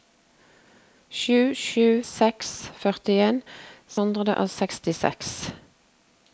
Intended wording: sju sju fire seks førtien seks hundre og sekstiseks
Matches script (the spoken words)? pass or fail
fail